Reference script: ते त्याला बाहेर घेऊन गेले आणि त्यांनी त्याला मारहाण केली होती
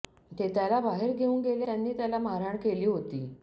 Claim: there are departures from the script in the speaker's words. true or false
true